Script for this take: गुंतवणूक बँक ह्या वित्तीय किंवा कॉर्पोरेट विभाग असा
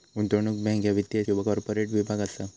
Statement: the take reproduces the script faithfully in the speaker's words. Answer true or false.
true